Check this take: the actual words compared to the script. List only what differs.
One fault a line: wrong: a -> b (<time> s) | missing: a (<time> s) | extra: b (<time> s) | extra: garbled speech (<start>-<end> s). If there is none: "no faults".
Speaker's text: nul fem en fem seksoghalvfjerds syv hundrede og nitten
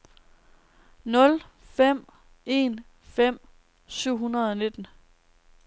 missing: seksoghalvfjerds (3.4 s)